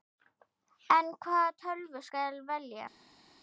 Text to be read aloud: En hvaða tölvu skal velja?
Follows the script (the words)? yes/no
yes